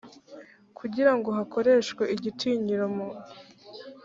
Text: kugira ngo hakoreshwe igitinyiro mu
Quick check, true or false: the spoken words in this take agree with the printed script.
true